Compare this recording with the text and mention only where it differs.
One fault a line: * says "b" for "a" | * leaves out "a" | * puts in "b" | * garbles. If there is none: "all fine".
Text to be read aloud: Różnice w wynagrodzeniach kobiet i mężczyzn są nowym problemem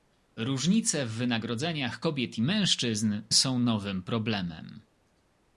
all fine